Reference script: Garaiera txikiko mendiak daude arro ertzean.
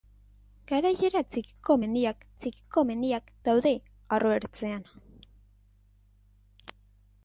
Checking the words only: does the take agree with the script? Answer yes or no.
no